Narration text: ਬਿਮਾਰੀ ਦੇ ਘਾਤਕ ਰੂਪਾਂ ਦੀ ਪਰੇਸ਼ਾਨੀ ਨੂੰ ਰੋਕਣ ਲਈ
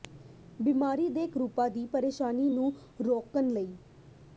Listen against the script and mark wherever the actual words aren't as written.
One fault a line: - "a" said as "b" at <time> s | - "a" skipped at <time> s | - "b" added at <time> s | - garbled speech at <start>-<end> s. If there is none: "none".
- "ਘਾਤਕ" skipped at 1.3 s